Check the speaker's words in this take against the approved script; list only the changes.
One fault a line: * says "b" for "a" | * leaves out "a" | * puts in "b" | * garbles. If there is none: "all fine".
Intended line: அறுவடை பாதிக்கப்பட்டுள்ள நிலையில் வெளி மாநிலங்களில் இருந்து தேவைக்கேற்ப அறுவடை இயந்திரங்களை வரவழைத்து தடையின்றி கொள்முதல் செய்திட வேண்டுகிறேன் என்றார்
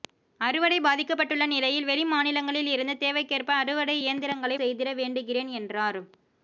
* leaves out "வரவழைத்து தடையின்றி கொள்முதல்"